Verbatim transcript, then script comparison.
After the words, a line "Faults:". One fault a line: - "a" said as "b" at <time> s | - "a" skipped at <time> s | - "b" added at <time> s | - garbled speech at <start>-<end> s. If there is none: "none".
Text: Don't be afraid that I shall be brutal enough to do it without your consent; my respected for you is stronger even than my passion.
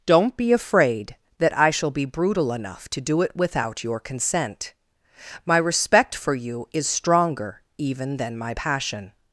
Don't be afraid that I shall be brutal enough to do it without your consent; my respect for you is stronger even than my passion.
Faults:
- "respected" said as "respect" at 5.6 s